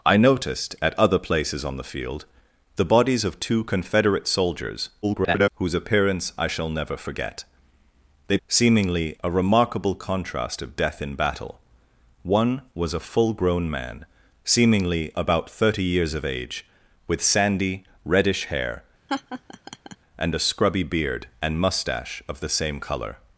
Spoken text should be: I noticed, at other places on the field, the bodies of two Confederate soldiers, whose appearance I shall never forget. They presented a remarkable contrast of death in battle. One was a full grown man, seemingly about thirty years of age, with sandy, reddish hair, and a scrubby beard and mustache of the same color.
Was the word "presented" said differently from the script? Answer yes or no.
yes